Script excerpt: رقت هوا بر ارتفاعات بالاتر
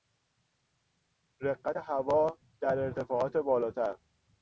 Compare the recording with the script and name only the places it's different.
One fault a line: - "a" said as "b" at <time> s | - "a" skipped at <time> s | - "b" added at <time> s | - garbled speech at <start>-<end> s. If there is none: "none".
- "بر" said as "در" at 2.6 s